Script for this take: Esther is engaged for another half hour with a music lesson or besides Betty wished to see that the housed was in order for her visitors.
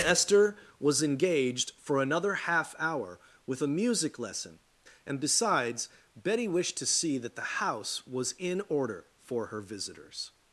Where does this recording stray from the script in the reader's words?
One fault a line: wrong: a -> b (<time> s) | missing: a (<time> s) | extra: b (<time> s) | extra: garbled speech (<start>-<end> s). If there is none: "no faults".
wrong: is -> was (0.8 s)
wrong: or -> and (5.0 s)
wrong: housed -> house (7.6 s)